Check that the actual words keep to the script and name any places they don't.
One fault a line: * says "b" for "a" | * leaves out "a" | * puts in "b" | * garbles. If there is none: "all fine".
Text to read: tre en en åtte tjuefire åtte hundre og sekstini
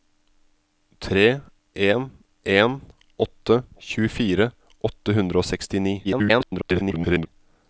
* garbles